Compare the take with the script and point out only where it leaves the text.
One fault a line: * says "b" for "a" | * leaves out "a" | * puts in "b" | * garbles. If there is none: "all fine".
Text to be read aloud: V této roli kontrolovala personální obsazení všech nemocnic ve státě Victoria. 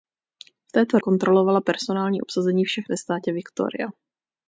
* leaves out "roli"
* leaves out "nemocnic"